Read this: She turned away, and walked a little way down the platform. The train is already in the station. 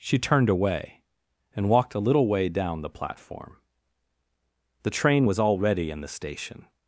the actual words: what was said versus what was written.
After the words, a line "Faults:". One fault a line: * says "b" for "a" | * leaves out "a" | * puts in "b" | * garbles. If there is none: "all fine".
She turned away, and walked a little way down the platform. The train was already in the station.
Faults:
* says "was" for "is"